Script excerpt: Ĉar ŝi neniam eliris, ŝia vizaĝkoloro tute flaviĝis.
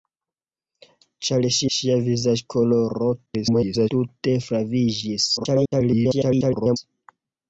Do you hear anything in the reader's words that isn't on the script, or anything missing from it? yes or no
yes